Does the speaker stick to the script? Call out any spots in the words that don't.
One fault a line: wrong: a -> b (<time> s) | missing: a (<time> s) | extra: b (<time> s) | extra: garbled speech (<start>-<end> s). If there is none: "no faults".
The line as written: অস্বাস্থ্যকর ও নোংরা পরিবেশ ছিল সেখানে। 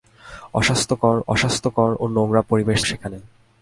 extra: অস্বাস্থ্যকর (1.3 s)
missing: ছিল (2.8 s)